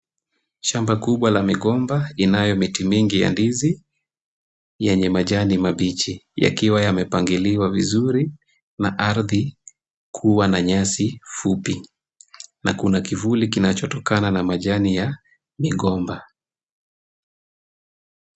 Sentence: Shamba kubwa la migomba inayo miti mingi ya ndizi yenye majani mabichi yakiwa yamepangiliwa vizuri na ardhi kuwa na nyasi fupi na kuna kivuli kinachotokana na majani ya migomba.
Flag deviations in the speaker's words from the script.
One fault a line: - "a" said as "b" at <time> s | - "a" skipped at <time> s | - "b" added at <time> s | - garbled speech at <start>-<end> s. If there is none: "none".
none